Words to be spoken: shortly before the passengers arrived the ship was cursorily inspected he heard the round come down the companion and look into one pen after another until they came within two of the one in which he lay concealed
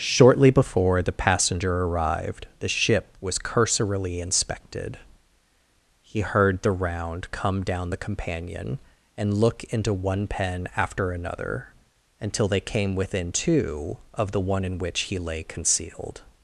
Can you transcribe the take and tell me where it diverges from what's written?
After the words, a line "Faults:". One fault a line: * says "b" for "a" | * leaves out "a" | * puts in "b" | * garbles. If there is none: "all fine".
shortly before the passenger arrived the ship was cursorily inspected he heard the round come down the companion and look into one pen after another until they came within two of the one in which he lay concealed
Faults:
* says "passenger" for "passengers"